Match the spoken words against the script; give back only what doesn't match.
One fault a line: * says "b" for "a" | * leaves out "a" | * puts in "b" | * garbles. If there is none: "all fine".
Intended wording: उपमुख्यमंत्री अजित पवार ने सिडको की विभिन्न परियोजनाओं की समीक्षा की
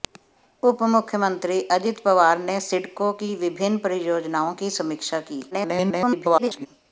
* garbles